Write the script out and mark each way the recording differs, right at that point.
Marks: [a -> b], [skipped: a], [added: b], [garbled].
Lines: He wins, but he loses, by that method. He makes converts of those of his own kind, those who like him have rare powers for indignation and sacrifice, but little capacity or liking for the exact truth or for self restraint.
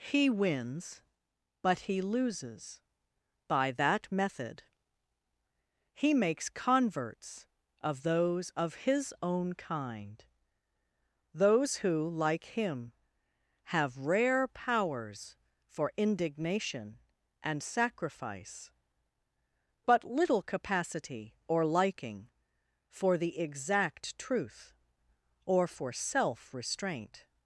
He wins, but he loses, by that method. He makes converts of those of his own kind, those who like him have rare powers for indignation and sacrifice, but little capacity or liking for the exact truth or for self restraint.